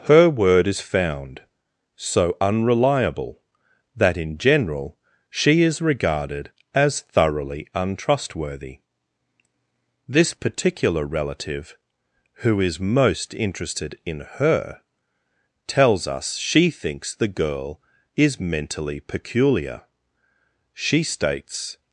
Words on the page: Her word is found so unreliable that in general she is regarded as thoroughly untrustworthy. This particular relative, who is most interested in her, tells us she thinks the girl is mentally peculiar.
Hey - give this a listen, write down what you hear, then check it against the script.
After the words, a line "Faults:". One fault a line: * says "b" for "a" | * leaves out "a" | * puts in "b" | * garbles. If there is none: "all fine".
Her word is found so unreliable that in general she is regarded as thoroughly untrustworthy. This particular relative, who is most interested in her, tells us she thinks the girl is mentally peculiar. She states
Faults:
* puts in "She states"